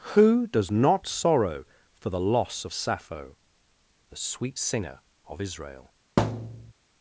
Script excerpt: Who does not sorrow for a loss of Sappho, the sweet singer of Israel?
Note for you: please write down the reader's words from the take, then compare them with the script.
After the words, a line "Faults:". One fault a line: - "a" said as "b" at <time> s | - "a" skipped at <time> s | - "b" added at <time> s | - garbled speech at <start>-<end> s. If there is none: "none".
Who does not sorrow for the loss of Sappho, the sweet singer of Israel?
Faults:
- "a" said as "the" at 2.1 s